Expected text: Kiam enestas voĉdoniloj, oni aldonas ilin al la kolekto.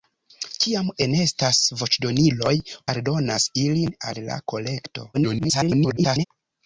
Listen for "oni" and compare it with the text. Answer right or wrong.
wrong